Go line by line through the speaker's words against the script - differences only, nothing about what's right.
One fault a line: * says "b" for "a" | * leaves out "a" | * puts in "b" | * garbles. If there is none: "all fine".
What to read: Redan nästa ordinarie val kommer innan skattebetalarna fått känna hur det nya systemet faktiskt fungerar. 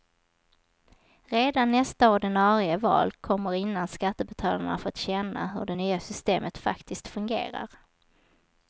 all fine